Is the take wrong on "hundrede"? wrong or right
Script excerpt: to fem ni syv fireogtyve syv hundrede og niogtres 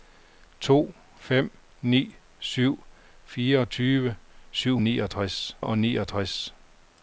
wrong